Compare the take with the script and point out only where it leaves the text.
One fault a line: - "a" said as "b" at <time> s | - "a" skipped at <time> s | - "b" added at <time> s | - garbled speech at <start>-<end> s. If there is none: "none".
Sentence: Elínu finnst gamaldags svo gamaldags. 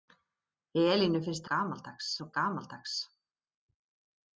none